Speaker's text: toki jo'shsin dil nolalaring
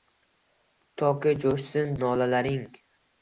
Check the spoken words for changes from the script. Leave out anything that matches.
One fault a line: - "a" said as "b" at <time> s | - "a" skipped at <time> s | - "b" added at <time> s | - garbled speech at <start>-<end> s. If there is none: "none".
- "dil" skipped at 1.9 s